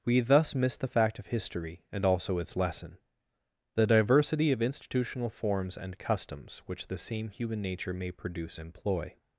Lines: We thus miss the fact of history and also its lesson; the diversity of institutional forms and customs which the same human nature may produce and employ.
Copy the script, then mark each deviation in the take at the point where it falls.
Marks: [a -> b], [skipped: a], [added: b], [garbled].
We thus miss the fact of history and also its lesson; the diversity of institutional forms and customs which the same human nature may produce [skipped: and] employ.